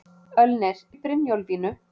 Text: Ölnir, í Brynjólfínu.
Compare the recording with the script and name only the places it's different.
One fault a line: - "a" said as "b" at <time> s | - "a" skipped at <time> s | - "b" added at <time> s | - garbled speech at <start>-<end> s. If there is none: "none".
none